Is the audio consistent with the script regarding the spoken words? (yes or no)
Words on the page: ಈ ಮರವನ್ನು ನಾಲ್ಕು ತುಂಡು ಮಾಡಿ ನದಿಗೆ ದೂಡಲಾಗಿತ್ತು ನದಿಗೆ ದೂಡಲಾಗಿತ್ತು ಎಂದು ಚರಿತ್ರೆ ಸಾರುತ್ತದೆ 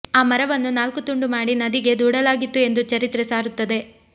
no